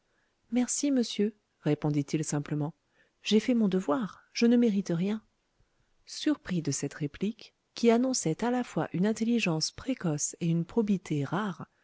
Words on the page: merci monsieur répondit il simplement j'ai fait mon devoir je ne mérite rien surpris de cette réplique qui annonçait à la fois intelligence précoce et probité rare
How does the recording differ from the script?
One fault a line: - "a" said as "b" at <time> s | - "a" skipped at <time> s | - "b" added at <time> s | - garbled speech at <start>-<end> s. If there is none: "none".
- "une" added at 8.9 s
- "une" added at 10.5 s